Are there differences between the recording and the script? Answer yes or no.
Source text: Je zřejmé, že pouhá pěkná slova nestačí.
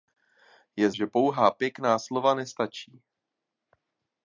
yes